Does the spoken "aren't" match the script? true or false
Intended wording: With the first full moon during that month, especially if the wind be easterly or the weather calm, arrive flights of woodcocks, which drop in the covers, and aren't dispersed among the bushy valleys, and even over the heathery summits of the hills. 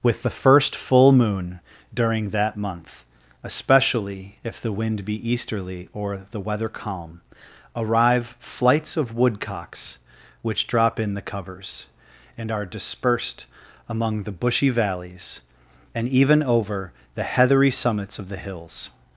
false